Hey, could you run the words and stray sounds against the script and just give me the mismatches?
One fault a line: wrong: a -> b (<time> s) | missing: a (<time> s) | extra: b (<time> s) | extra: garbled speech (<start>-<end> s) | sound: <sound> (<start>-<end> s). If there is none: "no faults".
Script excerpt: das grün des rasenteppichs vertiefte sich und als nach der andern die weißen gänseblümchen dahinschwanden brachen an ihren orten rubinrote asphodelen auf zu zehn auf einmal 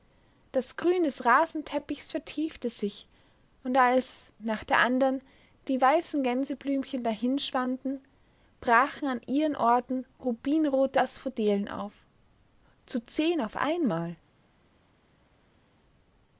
no faults